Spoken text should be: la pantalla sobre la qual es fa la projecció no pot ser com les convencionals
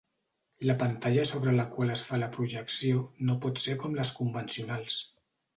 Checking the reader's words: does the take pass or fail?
pass